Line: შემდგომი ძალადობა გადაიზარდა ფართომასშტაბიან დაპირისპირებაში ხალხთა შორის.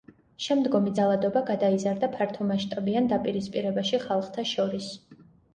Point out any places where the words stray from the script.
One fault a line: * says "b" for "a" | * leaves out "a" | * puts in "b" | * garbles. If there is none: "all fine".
all fine